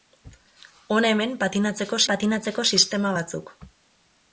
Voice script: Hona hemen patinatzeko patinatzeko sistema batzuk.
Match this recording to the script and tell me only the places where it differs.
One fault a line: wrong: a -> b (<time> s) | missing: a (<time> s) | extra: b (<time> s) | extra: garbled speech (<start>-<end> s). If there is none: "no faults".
no faults